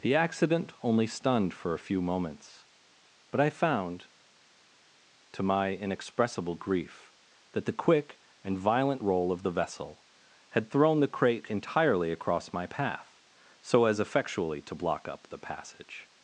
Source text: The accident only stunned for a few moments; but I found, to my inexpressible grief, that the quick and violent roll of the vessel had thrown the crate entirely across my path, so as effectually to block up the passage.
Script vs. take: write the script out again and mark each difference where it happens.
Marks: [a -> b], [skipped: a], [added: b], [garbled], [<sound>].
The accident only stunned for a few moments; but I found, to my inexpressible grief, that the quick and violent roll of the vessel had thrown the crate entirely across my path, so as effectually to block up the passage.